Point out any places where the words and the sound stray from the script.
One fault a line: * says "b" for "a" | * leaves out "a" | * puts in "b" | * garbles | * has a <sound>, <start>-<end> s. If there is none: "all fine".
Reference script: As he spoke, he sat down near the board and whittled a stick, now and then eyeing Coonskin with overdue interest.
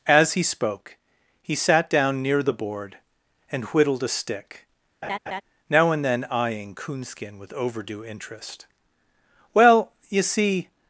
* has a laugh, 5.0-5.4 s
* puts in "Well you see"